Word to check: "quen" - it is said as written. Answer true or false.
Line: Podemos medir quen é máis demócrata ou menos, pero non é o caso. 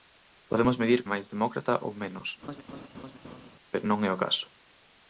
false